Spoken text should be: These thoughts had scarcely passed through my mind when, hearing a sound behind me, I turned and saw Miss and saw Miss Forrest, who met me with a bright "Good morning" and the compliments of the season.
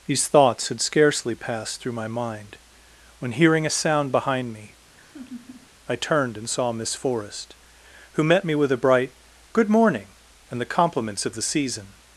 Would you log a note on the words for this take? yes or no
yes